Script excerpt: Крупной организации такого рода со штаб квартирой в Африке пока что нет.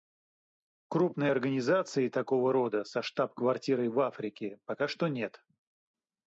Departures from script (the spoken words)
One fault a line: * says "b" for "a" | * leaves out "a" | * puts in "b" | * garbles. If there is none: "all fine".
all fine